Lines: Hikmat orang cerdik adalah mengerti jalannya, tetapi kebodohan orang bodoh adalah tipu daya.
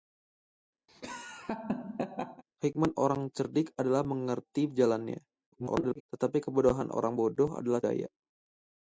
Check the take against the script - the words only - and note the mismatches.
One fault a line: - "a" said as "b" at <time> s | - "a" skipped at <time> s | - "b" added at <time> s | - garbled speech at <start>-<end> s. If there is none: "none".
- garbled speech at 5.5-6.0 s
- "tipu" skipped at 7.8 s